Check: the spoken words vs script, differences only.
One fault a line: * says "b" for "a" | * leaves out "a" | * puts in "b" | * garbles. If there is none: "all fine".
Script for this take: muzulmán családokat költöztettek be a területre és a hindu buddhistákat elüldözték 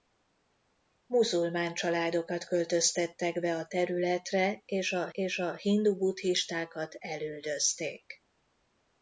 * puts in "és a"